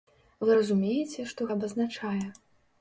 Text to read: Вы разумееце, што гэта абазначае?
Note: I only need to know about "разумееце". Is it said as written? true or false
true